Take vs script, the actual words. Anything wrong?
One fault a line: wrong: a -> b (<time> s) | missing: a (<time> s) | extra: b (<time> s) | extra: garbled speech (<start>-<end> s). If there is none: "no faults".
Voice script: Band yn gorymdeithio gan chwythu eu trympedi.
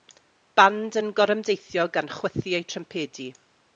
no faults